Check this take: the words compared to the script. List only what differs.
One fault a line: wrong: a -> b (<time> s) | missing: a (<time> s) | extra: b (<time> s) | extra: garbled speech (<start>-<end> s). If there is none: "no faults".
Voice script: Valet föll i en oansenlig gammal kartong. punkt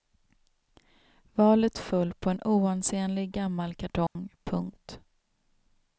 wrong: i -> på (2.1 s)